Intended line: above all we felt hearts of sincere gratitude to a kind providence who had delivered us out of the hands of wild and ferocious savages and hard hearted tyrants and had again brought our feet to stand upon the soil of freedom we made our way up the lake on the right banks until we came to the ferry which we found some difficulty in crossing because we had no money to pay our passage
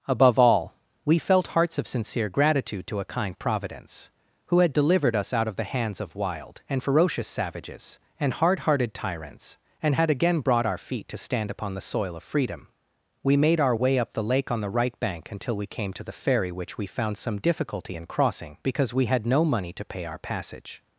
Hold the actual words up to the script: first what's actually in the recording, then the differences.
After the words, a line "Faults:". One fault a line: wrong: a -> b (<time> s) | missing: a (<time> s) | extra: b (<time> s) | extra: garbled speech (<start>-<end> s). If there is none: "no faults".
above all we felt hearts of sincere gratitude to a kind providence who had delivered us out of the hands of wild and ferocious savages and hard hearted tyrants and had again brought our feet to stand upon the soil of freedom we made our way up the lake on the right bank until we came to the ferry which we found some difficulty in crossing because we had no money to pay our passage
Faults:
wrong: banks -> bank (15.0 s)